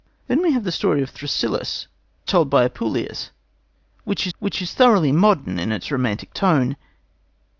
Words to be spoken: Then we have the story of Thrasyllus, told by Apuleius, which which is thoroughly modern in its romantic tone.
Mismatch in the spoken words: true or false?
false